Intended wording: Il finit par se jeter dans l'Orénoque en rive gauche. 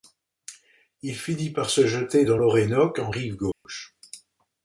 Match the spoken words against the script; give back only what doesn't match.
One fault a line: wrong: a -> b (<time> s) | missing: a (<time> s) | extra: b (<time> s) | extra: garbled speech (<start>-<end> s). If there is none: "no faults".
no faults